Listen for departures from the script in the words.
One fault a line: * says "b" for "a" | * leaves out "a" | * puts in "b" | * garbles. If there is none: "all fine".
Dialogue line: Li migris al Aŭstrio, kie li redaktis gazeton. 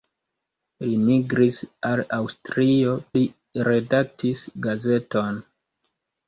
* leaves out "kie"